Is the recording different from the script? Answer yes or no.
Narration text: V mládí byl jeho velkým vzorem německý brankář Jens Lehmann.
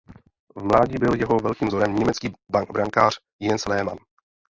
no